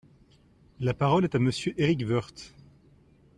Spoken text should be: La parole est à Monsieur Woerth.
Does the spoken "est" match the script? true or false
true